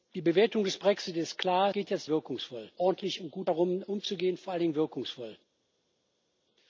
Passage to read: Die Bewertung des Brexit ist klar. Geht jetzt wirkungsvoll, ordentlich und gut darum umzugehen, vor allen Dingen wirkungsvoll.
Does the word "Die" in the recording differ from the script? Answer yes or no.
no